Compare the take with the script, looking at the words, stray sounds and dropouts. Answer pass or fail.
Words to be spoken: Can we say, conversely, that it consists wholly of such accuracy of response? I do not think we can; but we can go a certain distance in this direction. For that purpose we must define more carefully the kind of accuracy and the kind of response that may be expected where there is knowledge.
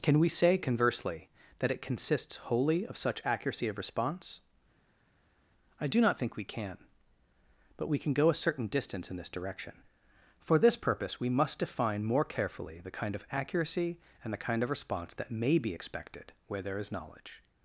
fail